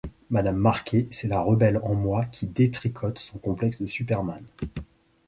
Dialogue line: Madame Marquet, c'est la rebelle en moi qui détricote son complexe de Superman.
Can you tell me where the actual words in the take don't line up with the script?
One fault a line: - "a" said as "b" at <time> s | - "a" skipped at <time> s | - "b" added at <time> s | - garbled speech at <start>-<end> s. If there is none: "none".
none